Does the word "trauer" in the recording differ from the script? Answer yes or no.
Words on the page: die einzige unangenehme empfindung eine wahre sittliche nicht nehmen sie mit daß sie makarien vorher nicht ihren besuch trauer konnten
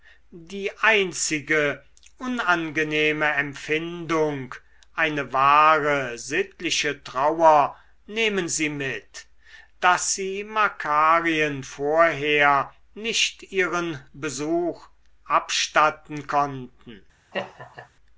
yes